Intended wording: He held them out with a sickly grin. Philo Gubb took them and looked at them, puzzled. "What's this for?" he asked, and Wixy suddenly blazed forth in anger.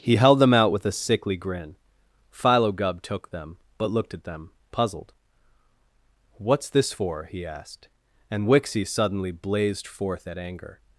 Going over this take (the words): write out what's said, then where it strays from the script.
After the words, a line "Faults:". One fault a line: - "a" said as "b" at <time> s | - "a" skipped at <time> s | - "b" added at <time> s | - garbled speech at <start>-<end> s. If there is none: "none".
He held them out with a sickly grin. Philo Gubb took them but looked at them, puzzled. "What's this for?" he asked, and Wixy suddenly blazed forth at anger.
Faults:
- "and" said as "but" at 3.8 s
- "in" said as "at" at 10.3 s